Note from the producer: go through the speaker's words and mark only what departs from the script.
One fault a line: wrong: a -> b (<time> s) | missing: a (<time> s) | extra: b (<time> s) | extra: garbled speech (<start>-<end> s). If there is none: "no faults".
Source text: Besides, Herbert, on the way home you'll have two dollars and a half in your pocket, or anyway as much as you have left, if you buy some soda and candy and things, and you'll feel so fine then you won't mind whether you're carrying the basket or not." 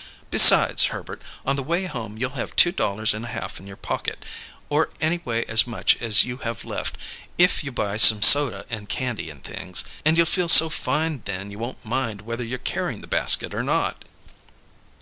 no faults